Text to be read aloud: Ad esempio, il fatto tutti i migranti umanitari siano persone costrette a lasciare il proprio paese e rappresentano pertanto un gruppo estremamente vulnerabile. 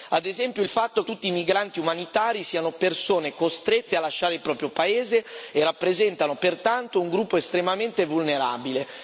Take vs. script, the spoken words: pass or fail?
pass